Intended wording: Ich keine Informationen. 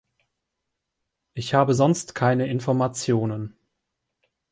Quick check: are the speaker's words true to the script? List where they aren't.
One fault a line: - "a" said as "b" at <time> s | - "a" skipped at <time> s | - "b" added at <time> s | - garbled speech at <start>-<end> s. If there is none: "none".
- "habe sonst" added at 1.5 s